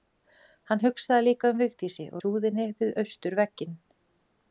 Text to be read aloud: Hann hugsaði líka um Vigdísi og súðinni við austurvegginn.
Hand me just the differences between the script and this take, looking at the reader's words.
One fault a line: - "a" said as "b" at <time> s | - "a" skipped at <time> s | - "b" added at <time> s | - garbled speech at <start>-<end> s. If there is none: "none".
none